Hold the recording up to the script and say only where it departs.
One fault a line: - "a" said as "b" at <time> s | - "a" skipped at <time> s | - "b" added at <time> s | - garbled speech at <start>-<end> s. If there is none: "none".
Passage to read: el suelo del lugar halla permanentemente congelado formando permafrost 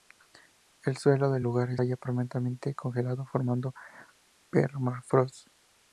none